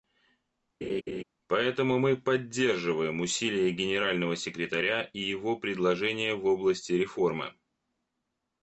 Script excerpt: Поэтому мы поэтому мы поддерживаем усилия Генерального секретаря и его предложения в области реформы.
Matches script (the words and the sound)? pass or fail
fail